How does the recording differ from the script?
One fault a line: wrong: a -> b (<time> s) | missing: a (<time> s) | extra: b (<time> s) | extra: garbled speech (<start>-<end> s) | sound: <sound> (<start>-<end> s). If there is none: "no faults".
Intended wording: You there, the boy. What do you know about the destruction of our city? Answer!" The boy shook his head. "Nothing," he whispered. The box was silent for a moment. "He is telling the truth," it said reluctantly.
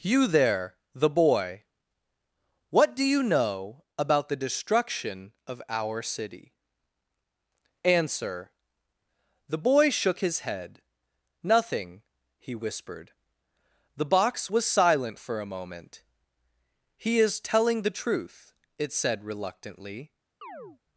sound: chirp (20.4-20.8 s)